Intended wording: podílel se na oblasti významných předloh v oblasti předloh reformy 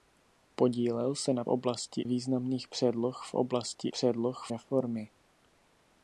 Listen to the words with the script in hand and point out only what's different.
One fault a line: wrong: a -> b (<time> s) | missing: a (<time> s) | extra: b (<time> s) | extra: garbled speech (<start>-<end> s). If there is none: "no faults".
no faults